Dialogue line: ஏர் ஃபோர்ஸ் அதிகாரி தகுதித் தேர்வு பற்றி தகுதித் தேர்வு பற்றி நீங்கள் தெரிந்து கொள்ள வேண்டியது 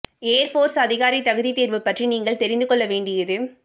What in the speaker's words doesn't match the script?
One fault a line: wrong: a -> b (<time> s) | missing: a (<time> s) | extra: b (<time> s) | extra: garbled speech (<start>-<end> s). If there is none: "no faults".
missing: தகுதித் தேர்வு பற்றி (2.1 s)